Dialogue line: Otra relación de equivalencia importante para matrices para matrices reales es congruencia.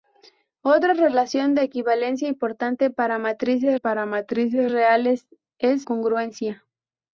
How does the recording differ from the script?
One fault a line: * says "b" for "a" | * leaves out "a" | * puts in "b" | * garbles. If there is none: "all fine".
all fine